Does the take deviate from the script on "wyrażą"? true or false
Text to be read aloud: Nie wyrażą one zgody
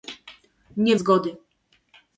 true